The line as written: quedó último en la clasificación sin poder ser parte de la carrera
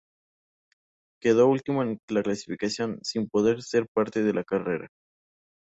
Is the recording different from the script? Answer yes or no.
no